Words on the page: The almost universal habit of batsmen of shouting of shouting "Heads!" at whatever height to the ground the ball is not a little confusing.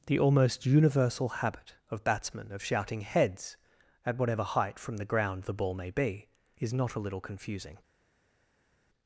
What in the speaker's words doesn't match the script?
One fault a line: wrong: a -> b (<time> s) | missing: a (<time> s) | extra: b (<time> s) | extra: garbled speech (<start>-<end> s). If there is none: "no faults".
missing: of shouting (3.0 s)
wrong: to -> from (4.8 s)
extra: may be (5.8 s)